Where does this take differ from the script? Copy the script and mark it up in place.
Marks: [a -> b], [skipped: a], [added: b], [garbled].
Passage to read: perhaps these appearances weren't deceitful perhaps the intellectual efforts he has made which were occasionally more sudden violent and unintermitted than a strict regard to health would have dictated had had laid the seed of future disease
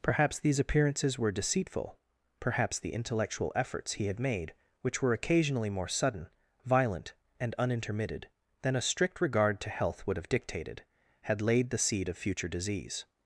perhaps these appearances [weren't -> were] deceitful perhaps the intellectual efforts he [has -> had] made which were occasionally more sudden violent and unintermitted than a strict regard to health would have dictated had [skipped: had] laid the seed of future disease